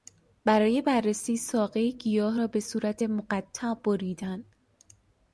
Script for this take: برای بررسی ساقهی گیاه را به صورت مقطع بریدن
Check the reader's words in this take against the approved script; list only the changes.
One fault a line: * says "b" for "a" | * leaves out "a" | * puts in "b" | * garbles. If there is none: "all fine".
all fine